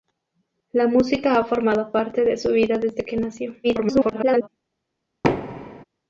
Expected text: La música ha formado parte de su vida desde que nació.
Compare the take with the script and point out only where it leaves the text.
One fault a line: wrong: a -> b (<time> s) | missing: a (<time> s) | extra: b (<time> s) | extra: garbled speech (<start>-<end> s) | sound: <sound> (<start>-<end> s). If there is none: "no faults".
extra: garbled speech (3.6-4.5 s)
sound: thud (5.2-5.8 s)